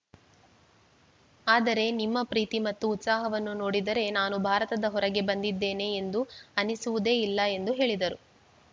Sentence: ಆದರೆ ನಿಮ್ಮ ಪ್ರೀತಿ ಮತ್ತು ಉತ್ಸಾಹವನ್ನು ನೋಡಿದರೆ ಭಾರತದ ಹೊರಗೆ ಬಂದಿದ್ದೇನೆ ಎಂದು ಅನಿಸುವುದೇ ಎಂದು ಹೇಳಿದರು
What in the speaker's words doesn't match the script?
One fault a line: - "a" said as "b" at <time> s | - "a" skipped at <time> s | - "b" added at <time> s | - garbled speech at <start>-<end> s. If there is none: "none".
- "ನಾನು" added at 4.1 s
- "ಇಲ್ಲ" added at 7.2 s